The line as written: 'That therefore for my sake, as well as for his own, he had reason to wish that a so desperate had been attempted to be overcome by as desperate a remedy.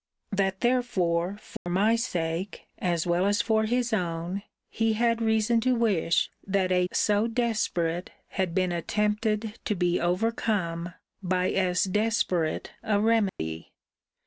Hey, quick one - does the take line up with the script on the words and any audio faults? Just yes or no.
no